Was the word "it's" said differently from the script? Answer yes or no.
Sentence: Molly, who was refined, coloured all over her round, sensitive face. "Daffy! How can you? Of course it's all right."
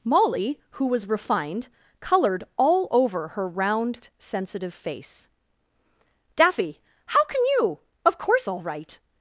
yes